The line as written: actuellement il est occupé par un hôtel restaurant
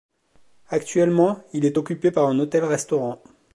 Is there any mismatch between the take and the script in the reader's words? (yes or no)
no